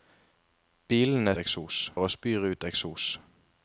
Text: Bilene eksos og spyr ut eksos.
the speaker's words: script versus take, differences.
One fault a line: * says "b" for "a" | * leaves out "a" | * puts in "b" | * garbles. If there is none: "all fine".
all fine